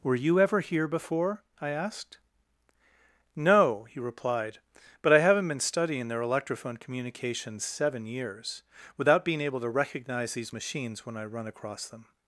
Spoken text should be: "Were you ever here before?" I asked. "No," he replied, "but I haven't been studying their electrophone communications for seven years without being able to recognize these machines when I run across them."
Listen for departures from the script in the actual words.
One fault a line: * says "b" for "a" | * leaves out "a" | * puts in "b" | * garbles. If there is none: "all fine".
* leaves out "for"